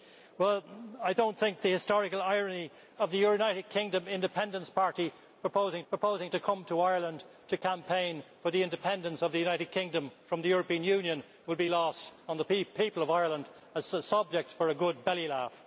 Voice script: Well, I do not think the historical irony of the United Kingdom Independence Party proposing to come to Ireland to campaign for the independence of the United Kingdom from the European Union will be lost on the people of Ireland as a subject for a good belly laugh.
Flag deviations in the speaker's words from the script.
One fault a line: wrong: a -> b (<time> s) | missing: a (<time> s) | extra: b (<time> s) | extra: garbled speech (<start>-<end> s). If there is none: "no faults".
extra: proposing (5.9 s)